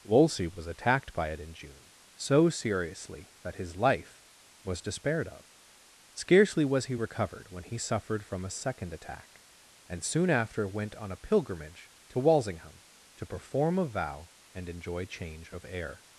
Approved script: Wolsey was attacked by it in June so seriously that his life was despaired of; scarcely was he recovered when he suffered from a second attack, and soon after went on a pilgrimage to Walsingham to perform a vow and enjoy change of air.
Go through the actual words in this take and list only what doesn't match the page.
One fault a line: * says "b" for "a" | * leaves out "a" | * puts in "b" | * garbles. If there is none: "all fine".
all fine